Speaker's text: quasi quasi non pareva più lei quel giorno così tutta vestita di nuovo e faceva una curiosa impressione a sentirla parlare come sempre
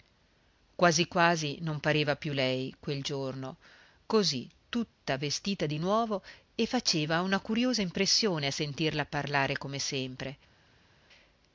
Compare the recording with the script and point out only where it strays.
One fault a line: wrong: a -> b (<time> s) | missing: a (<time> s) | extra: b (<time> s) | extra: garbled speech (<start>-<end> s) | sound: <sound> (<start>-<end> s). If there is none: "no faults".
no faults